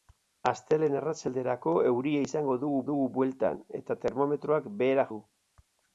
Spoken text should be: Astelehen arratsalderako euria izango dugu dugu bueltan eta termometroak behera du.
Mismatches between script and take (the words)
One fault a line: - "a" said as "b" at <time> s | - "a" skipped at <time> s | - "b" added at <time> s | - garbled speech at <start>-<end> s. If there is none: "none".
none